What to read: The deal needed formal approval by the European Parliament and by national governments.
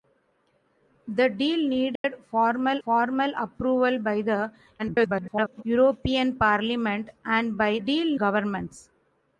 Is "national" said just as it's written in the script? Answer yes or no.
no